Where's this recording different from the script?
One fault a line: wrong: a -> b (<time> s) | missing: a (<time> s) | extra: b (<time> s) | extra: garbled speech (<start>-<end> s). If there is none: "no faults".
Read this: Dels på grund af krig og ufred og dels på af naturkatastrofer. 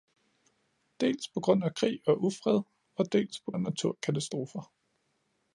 no faults